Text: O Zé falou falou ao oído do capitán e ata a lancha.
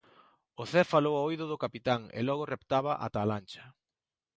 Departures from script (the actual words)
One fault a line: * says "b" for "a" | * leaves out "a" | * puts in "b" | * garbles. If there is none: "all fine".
* leaves out "falou"
* puts in "logo reptaba"